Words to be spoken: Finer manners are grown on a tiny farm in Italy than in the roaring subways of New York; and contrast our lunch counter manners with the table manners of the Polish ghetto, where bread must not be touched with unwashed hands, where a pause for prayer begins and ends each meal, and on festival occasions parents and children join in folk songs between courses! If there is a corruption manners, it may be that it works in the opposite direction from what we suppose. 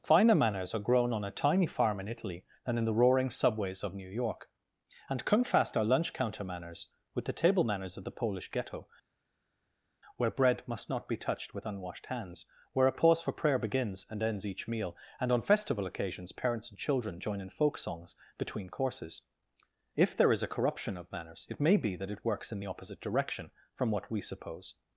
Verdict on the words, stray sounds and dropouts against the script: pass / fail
fail